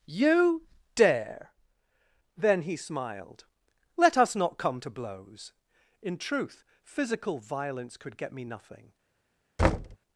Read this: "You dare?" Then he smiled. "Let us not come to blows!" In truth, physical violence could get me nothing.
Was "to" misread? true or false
false